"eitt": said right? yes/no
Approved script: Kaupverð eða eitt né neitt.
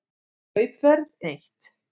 no